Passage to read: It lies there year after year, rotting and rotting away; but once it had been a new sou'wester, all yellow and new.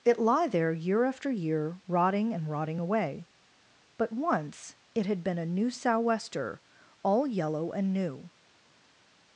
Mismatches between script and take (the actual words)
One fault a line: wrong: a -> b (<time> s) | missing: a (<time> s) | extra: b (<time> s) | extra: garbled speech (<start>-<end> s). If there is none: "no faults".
wrong: lies -> lie (0.2 s)